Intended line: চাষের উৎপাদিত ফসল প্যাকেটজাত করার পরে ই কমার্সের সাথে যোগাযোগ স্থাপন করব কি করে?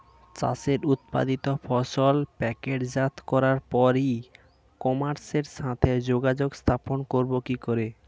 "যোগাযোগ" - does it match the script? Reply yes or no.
yes